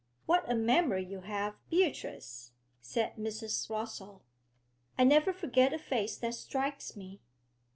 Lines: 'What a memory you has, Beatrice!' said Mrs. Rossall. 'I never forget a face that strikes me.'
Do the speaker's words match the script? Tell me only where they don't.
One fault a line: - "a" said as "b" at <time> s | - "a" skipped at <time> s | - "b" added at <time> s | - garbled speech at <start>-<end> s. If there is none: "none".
- "has" said as "have" at 1.2 s